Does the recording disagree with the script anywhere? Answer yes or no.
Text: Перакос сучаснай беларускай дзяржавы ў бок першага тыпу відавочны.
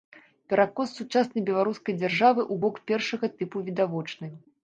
no